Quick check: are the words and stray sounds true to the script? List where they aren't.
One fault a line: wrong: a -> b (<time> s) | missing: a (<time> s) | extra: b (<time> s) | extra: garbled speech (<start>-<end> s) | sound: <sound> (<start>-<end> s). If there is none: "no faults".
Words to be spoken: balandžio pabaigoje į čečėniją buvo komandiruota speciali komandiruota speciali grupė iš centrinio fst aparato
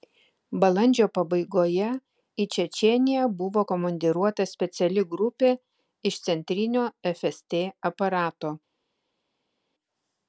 missing: komandiruota speciali (5.1 s)